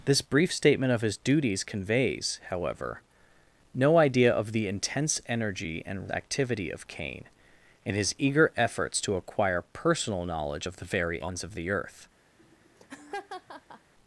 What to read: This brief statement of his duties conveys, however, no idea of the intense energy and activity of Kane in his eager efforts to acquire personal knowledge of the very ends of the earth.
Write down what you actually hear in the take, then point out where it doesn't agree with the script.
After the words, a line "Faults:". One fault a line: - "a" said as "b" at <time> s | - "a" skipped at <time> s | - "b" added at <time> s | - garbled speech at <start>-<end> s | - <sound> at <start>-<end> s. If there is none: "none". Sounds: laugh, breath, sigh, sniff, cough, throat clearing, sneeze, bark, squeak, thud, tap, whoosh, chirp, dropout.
This brief statement of his duties conveys, however, no idea of the intense energy and activity of Kane in his eager efforts to acquire personal knowledge of the very ends of the earth.
Faults:
- laugh at 12.4-13.9 s